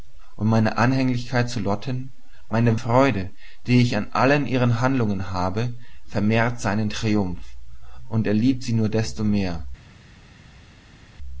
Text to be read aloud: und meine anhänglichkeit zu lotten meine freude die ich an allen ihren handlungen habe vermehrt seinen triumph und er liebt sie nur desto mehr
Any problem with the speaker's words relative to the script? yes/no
no